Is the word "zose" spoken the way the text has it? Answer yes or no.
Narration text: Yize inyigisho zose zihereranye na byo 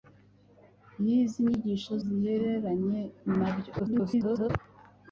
no